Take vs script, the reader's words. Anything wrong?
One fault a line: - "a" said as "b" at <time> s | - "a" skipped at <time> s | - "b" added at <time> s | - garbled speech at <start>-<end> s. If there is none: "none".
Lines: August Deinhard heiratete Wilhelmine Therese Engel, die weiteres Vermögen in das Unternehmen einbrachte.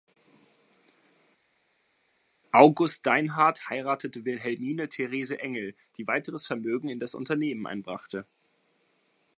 none